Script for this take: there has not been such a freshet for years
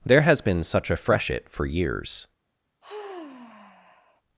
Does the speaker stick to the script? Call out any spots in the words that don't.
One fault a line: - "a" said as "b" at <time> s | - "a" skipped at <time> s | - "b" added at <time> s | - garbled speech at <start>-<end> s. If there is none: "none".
- "not" skipped at 0.4 s